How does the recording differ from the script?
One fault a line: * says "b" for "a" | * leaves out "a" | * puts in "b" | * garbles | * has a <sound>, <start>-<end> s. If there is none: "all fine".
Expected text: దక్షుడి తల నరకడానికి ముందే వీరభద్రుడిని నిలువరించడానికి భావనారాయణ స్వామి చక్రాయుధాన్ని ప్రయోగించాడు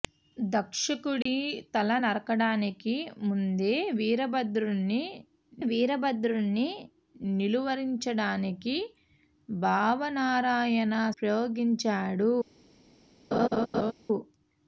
* has a dropout, 1.2-1.3 s
* puts in "వీరభద్రుడిని"
* leaves out "స్వామి చక్రాయుధాన్ని"
* has a laugh, 13.3-13.9 s